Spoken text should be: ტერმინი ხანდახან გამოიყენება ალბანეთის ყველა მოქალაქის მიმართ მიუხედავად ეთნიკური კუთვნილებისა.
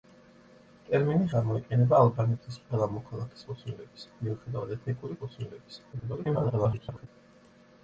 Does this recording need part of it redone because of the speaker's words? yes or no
yes